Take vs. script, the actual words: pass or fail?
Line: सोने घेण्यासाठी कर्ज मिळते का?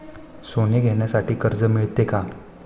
pass